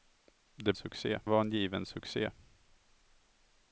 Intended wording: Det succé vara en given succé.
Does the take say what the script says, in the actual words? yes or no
yes